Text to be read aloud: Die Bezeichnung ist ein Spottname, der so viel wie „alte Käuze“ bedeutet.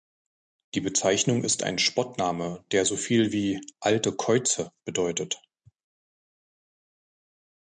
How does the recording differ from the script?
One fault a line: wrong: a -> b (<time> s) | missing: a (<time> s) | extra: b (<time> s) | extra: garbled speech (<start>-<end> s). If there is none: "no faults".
no faults